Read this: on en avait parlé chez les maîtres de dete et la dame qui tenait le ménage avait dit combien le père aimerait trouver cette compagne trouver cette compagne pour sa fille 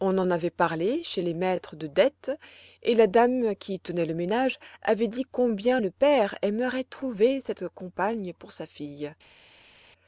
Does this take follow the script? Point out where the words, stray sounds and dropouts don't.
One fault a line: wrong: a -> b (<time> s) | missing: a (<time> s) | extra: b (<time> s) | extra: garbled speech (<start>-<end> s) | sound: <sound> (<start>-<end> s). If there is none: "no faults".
missing: trouver cette compagne (8.3 s)